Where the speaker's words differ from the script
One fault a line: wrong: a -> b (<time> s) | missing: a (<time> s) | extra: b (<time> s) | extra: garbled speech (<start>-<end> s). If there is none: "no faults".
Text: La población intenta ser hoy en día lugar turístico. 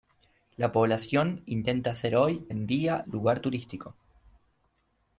no faults